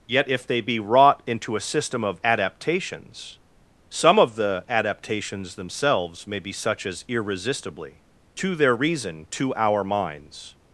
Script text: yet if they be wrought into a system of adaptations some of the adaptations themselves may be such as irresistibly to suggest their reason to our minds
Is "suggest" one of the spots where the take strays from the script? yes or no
yes